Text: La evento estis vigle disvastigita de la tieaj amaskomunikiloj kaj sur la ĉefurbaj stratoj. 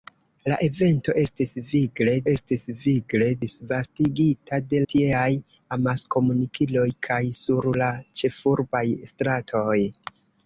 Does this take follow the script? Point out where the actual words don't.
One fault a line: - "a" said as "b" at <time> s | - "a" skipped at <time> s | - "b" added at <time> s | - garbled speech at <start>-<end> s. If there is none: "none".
- "estis vigle" added at 2.3 s
- "la" skipped at 4.8 s